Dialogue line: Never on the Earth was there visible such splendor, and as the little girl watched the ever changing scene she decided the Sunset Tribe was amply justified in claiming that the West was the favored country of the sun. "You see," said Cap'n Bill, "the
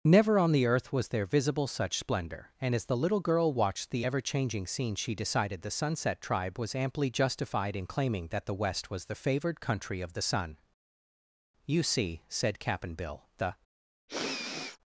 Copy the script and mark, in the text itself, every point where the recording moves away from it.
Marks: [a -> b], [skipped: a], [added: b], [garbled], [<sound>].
Never on the Earth was there visible such splendor, and as the little girl watched the ever changing scene she decided the Sunset Tribe was amply justified in claiming that the West was the favored country of the sun. "You see," said Cap'n Bill, "the [sniff]